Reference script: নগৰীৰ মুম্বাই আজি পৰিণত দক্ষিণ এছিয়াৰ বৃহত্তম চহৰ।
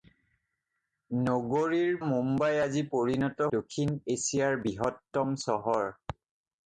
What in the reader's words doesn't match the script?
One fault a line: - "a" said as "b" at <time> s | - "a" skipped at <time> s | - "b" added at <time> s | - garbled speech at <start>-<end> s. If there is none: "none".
none